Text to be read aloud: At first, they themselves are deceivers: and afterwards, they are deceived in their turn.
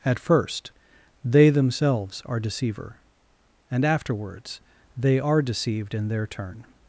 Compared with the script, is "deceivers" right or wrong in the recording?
wrong